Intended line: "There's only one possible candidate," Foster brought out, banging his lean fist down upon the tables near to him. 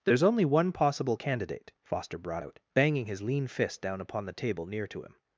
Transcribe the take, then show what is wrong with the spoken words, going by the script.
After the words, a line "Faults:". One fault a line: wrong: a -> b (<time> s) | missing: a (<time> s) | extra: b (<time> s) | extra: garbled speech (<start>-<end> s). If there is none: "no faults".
"There's only one possible candidate," Foster brought out, banging his lean fist down upon the table near to him.
Faults:
wrong: tables -> table (4.3 s)